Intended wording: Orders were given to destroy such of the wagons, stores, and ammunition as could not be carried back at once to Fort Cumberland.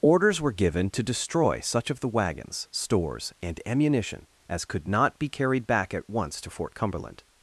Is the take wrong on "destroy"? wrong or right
right